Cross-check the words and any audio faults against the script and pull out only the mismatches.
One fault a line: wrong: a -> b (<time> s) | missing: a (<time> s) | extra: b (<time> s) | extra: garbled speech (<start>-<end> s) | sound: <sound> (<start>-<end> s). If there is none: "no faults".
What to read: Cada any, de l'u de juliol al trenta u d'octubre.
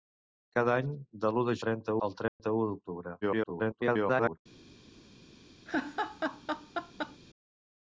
wrong: juliol -> trenta (1.6 s)
sound: dropout (2.3-2.4 s)
extra: garbled speech (3.2-4.4 s)
sound: laugh (5.7-7.2 s)